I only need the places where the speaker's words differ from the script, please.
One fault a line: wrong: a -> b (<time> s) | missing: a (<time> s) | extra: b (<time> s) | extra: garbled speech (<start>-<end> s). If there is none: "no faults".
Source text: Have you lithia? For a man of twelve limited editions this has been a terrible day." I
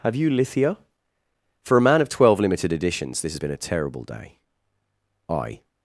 no faults